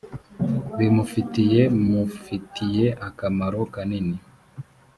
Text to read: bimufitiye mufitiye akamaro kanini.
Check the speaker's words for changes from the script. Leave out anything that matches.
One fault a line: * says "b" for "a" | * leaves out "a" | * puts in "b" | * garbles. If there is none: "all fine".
all fine